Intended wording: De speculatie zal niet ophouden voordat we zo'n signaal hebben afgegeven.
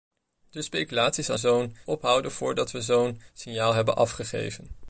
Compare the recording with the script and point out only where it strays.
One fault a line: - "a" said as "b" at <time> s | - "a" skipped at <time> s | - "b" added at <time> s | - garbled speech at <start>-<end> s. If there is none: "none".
- "niet" said as "zo'n" at 1.4 s